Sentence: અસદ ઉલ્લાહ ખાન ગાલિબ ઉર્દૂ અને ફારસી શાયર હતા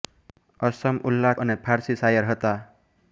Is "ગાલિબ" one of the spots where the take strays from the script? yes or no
yes